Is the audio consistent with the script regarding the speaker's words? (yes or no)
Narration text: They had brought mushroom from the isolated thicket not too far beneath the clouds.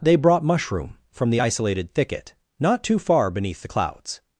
no